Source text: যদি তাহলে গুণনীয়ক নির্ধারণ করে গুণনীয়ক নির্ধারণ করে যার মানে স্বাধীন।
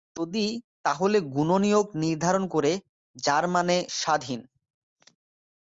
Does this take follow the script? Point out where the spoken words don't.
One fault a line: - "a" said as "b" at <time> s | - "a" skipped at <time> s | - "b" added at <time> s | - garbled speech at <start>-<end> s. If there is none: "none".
- "গুণনীয়ক নির্ধারণ করে" skipped at 2.7 s